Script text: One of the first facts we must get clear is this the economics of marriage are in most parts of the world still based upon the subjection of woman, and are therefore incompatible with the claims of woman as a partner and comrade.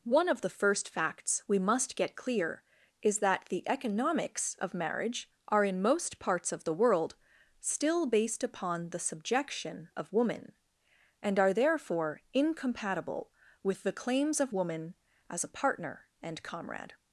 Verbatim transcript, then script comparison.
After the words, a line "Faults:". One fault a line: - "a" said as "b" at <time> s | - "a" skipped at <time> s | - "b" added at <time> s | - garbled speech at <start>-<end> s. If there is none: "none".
One of the first facts we must get clear is that the economics of marriage are in most parts of the world still based upon the subjection of woman, and are therefore incompatible with the claims of woman as a partner and comrade.
Faults:
- "this" said as "that" at 3.2 s